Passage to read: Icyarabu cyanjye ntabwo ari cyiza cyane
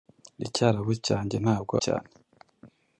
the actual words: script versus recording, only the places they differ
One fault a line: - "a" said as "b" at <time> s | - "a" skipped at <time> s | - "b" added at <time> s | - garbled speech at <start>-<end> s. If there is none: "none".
- "ari cyiza" skipped at 1.8 s